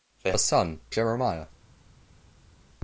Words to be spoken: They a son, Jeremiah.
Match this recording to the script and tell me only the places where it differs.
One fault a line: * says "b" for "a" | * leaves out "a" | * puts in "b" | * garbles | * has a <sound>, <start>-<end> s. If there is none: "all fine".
all fine